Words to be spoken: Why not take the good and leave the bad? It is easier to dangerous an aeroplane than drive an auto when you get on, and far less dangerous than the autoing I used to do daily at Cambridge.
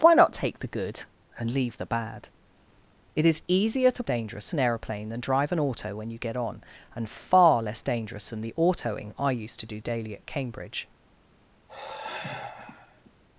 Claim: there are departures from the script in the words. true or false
false